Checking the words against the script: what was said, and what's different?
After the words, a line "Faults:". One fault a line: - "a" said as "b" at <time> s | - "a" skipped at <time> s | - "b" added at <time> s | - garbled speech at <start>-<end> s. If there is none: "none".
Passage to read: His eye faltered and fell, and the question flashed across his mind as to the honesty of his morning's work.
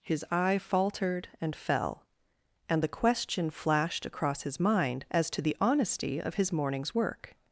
His eye faltered and fell, and the question flashed across his mind as to the honesty of his morning's work.
Faults:
none